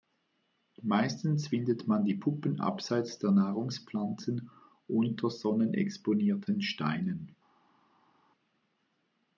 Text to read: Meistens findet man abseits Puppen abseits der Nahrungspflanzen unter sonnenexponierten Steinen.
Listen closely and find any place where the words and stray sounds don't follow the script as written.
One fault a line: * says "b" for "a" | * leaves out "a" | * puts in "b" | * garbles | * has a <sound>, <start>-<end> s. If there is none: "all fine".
* says "die" for "abseits"